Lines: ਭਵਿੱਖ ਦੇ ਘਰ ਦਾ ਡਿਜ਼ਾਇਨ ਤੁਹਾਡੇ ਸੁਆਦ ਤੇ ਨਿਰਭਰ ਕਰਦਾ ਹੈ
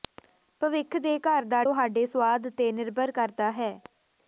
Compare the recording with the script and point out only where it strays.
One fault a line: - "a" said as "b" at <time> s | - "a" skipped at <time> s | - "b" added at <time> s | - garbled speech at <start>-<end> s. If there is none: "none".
- "ਡਿਜ਼ਾਇਨ" skipped at 1.6 s